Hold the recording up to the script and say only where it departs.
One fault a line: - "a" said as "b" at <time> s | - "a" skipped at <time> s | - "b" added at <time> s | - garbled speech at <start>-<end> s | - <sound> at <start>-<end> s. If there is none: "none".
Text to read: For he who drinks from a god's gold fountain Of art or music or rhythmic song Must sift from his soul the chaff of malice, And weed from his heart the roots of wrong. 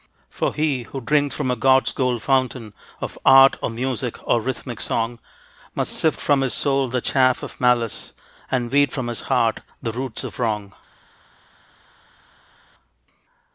none